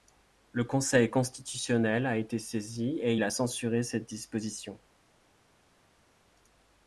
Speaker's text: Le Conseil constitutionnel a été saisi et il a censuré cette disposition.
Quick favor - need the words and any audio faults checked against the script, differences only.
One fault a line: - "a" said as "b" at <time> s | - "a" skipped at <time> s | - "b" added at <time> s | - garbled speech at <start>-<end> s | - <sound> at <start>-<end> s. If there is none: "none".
none